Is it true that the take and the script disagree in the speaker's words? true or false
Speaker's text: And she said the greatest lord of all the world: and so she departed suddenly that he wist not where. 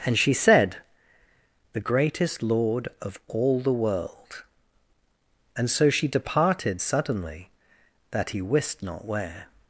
false